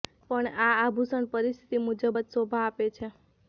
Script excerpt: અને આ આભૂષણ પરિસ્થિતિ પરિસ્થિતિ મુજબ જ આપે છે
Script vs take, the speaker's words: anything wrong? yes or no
yes